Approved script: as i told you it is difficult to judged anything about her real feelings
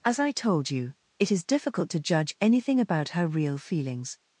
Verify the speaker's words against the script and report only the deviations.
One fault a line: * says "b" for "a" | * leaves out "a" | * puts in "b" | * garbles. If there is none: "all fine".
* says "judge" for "judged"